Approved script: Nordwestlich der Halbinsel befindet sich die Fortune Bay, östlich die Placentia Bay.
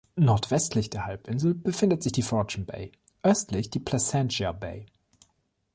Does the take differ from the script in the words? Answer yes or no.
no